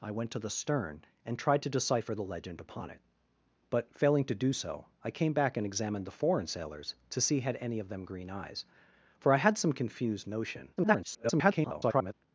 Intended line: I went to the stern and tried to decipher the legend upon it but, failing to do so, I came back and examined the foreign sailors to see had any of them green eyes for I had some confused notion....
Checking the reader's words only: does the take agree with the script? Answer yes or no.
no